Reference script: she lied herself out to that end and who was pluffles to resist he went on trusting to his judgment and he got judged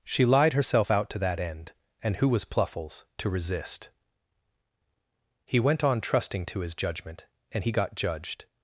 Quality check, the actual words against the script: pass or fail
pass